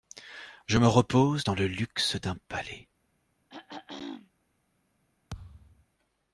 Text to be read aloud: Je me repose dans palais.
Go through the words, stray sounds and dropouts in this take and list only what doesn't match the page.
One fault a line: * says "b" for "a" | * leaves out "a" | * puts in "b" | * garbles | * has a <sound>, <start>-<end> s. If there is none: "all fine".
* puts in "le luxe d'un"
* has a throat clearing, 3.5-4.3 s
* has a thud, 5.3-5.9 s